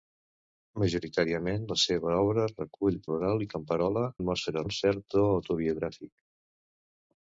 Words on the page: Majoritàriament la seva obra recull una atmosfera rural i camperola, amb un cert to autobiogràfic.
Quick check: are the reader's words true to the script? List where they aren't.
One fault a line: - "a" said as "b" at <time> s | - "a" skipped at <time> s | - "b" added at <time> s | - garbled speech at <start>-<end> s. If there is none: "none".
- "una atmosfera" skipped at 3.0 s
- "amb" said as "atmosfera" at 4.2 s